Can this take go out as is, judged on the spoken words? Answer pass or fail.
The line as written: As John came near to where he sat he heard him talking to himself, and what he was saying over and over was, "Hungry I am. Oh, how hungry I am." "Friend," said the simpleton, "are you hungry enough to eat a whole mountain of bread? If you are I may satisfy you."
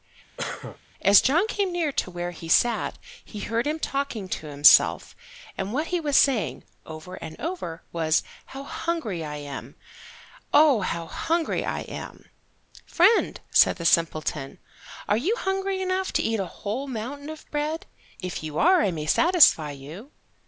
fail